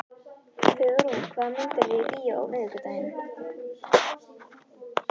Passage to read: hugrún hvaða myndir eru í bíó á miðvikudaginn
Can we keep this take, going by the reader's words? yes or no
yes